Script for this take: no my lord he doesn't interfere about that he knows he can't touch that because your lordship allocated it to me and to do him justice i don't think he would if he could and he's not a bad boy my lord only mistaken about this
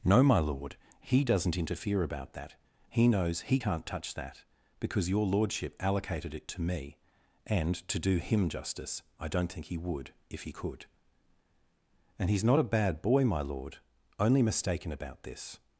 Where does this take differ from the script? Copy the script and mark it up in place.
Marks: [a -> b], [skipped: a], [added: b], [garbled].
no my lord he doesn't interfere about that he knows he can't touch that because your lordship allocated it to me and to do him justice i don't think he would if he could and he's not a bad boy my lord only mistaken about this